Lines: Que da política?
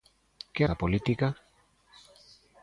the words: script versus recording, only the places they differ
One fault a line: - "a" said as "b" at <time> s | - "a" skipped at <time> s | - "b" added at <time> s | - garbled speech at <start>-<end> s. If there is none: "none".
none